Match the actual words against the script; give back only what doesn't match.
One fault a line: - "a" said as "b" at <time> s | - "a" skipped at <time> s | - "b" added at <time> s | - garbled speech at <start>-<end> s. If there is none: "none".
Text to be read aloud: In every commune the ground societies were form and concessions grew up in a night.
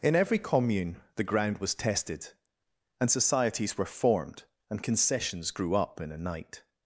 - "was tested and" added at 1.6 s
- "form" said as "formed" at 3.9 s